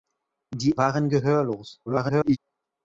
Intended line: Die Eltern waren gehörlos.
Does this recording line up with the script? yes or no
no